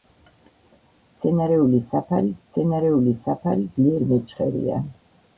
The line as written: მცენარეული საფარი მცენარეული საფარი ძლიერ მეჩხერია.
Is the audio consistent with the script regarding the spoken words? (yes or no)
yes